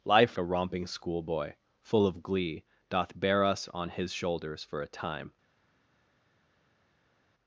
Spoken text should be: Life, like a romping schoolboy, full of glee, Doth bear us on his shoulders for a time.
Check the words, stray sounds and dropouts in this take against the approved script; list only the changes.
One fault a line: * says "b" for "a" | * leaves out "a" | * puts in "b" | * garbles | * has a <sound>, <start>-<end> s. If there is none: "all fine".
* leaves out "like"